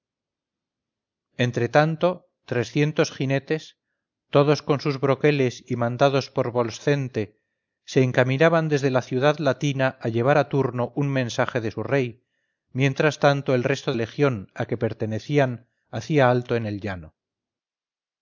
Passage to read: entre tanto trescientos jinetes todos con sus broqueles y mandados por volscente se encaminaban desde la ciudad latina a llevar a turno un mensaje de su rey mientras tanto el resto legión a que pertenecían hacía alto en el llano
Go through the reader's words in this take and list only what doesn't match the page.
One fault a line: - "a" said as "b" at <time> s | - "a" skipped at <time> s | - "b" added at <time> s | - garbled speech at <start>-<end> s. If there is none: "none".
none